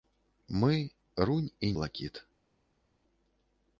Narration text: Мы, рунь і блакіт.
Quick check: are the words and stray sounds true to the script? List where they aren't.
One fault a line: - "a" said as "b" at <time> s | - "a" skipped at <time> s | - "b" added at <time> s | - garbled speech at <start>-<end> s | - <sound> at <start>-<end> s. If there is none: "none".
none